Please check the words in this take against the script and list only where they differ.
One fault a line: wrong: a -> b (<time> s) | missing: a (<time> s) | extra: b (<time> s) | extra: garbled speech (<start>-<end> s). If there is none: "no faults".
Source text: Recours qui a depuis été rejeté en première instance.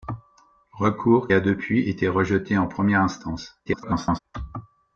missing: qui (1.3 s)
extra: garbled speech (3.7-4.2 s)